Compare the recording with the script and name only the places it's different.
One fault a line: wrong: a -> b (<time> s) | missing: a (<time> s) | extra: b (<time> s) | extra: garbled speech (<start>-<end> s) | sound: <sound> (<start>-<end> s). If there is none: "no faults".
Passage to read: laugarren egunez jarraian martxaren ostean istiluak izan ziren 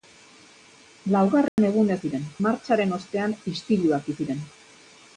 sound: dropout (1.5-1.6 s)
wrong: jarraian -> ziren (2.0 s)
missing: izan (4.1 s)